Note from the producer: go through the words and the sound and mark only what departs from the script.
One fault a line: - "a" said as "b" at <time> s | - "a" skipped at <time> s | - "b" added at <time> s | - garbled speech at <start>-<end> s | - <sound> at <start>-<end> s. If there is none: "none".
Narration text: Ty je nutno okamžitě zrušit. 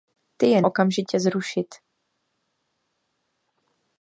- "nutno" skipped at 0.6 s